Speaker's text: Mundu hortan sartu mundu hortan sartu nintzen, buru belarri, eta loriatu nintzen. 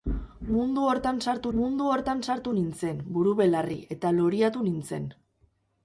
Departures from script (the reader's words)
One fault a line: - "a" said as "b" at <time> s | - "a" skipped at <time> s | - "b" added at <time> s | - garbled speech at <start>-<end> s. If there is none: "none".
none